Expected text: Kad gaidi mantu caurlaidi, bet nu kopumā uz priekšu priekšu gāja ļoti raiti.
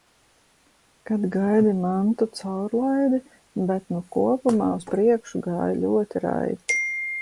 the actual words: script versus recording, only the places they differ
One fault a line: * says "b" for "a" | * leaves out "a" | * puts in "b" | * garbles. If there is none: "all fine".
* leaves out "priekšu"